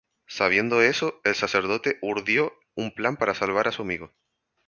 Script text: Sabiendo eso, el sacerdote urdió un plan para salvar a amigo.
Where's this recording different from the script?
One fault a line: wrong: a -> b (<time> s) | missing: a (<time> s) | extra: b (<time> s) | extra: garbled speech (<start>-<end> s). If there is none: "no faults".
extra: su (3.7 s)